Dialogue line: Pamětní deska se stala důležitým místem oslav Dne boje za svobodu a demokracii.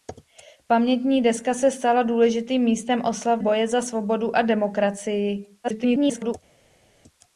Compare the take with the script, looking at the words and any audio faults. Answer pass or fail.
fail